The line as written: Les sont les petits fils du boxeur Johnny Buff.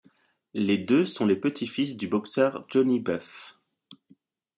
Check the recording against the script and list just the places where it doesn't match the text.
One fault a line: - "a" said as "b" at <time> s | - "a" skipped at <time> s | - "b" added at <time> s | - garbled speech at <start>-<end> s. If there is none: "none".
- "deux" added at 0.8 s